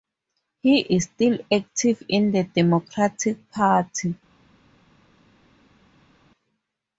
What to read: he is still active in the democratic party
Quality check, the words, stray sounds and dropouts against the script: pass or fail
pass